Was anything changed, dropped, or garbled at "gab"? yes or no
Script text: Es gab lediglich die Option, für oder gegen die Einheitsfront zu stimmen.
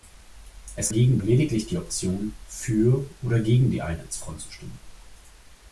yes